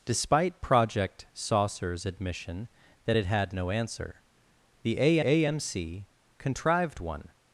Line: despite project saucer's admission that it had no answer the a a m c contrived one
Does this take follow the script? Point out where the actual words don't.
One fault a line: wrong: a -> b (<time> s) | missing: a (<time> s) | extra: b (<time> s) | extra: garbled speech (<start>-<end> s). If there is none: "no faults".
no faults